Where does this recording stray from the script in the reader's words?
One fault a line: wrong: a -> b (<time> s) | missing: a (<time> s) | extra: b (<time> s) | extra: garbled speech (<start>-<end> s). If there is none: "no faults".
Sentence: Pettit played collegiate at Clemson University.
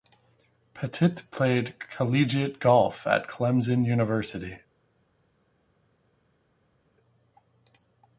extra: golf (2.6 s)